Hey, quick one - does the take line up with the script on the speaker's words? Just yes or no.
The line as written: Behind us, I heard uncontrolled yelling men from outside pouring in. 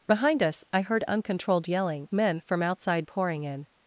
yes